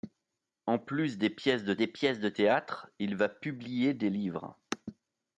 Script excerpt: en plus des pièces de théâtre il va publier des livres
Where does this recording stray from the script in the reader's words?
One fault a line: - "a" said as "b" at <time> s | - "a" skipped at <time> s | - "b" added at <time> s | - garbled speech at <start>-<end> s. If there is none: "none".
- "des pièces de" added at 1.8 s